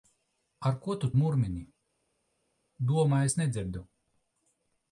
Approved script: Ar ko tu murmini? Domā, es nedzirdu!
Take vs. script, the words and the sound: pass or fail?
pass